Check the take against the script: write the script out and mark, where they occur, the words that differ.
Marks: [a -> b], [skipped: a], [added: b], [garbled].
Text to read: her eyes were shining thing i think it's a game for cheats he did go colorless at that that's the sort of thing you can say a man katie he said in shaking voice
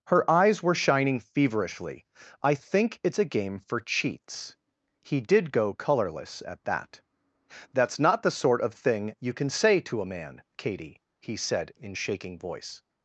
her eyes were shining [thing -> feverishly] i think it's a game for cheats he did go colorless at that that's [added: not] the sort of thing you can say [added: to] a man katie he said in shaking voice